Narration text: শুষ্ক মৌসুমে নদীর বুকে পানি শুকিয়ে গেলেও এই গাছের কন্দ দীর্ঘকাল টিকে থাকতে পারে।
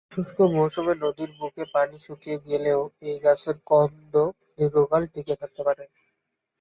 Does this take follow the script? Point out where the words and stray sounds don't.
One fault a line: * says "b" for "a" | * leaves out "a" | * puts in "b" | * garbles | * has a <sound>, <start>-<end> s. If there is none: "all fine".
all fine